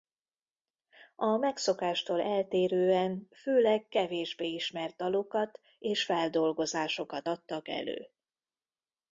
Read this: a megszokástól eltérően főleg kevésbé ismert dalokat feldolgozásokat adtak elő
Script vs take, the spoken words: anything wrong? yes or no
yes